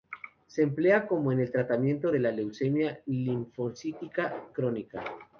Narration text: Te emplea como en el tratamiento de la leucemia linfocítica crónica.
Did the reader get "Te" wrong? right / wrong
wrong